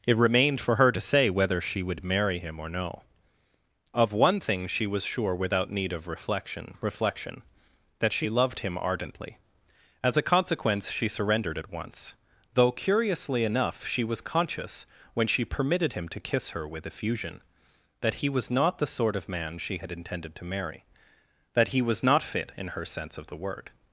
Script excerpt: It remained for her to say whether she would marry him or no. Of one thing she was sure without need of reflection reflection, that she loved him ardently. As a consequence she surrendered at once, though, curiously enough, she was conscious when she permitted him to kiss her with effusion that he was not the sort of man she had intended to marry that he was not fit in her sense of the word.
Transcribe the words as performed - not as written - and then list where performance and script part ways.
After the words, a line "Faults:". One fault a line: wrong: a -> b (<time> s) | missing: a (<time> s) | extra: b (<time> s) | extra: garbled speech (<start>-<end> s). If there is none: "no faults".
It remained for her to say whether she would marry him or no. Of one thing she was sure without need of reflection reflection, that she loved him ardently. As a consequence she surrendered at once, though, curiously enough, she was conscious when she permitted him to kiss her with effusion that he was not the sort of man she had intended to marry that he was not fit in her sense of the word.
Faults:
no faults